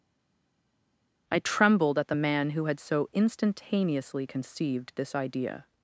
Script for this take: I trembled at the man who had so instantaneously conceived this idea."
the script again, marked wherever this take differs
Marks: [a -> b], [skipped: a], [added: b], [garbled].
I trembled at the man who had so instantaneously conceived this idea."